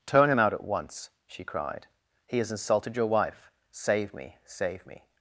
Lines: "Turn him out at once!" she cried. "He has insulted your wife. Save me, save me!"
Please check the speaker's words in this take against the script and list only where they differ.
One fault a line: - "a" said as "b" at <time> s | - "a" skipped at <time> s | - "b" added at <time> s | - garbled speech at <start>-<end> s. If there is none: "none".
none